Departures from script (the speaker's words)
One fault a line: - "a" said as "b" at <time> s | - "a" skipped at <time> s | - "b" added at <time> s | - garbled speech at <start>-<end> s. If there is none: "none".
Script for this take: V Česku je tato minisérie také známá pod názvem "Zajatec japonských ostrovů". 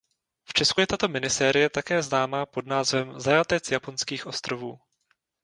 none